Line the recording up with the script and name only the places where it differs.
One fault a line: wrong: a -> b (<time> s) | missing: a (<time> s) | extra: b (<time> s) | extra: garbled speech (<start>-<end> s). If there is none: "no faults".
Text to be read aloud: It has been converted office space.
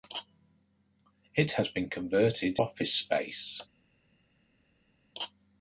no faults